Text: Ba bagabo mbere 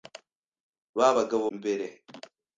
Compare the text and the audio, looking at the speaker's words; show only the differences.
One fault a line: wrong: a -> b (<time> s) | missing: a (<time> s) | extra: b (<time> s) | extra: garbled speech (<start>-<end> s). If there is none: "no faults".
no faults